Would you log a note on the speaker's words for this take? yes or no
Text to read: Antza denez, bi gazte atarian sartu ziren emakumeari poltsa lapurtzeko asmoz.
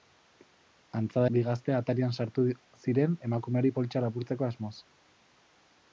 yes